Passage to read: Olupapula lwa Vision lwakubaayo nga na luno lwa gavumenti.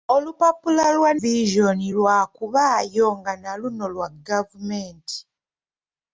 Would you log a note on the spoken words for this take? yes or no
no